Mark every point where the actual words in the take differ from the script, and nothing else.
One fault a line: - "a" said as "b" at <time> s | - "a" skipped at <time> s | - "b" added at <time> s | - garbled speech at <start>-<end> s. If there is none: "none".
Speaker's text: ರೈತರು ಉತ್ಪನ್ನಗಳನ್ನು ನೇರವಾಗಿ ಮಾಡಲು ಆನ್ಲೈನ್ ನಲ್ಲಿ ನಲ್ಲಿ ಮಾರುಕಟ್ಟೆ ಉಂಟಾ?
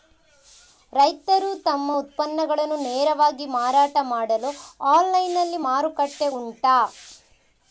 - "ತಮ್ಮ" added at 1.7 s
- "ಮಾರಾಟ" added at 3.6 s
- "ನಲ್ಲಿ" skipped at 5.6 s